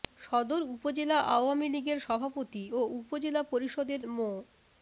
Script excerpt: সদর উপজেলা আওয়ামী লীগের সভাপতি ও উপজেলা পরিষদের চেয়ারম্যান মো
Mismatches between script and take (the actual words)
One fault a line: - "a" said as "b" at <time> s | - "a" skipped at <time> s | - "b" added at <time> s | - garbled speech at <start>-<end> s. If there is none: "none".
- "চেয়ারম্যান" skipped at 4.0 s